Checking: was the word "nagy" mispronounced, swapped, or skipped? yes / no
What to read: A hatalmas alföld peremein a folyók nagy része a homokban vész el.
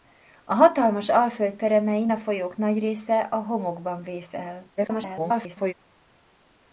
no